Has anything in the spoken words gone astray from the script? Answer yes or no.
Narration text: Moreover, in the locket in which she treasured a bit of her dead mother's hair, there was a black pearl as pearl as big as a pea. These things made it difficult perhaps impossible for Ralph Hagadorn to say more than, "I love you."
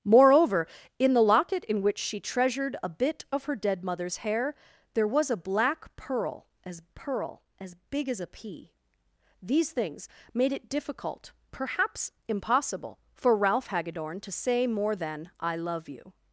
no